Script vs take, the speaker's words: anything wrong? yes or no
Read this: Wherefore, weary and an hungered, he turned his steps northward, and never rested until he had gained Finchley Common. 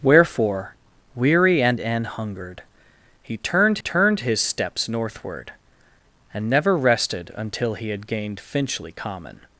yes